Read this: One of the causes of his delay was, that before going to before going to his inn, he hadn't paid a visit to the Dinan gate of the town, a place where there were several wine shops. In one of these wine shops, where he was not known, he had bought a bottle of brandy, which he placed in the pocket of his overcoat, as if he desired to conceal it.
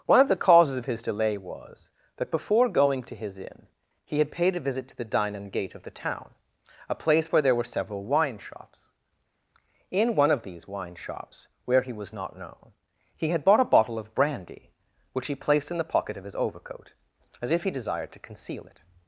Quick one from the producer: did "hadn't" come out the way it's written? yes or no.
no